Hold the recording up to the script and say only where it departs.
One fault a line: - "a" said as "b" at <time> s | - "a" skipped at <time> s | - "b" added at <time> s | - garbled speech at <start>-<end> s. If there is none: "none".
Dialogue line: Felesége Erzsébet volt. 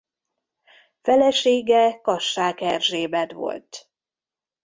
- "Kassák" added at 2.0 s